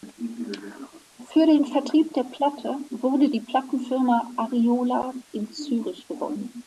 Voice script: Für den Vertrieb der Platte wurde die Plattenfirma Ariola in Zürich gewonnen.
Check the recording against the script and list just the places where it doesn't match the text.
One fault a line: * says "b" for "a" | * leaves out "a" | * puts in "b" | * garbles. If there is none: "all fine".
all fine